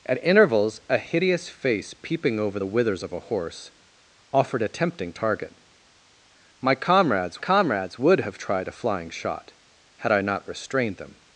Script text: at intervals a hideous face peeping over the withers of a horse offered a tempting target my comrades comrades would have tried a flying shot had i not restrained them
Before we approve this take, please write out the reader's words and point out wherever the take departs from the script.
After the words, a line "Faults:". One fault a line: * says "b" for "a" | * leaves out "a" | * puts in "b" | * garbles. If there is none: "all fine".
at intervals a hideous face peeping over the withers of a horse offered a tempting target my comrades comrades would have tried a flying shot had i not restrained them
Faults:
all fine